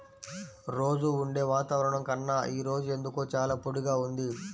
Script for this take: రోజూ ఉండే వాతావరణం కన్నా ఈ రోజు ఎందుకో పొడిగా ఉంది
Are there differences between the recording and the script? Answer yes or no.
yes